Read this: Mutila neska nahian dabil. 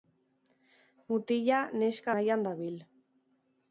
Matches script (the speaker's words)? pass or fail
pass